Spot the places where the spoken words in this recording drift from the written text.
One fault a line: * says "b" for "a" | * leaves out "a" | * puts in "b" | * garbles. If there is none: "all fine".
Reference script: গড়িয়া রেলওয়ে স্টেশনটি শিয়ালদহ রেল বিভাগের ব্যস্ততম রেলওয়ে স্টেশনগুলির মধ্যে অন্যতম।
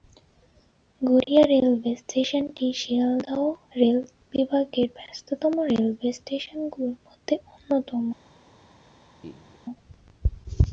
all fine